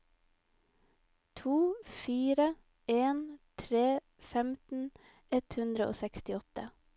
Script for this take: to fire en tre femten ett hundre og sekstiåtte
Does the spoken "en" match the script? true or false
true